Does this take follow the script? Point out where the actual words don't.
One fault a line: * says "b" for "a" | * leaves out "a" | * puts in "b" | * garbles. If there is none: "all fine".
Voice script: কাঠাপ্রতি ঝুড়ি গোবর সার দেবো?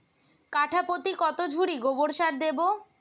* puts in "কত"